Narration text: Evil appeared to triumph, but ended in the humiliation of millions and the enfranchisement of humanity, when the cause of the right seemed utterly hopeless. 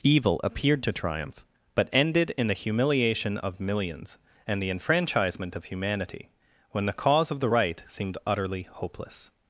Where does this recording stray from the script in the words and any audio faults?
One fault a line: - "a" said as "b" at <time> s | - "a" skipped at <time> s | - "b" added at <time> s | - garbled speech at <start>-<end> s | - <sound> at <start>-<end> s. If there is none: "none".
none